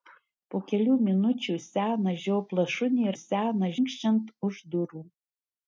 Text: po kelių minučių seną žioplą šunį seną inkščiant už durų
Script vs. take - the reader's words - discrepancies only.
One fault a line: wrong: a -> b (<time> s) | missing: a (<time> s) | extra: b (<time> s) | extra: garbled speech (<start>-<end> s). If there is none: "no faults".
no faults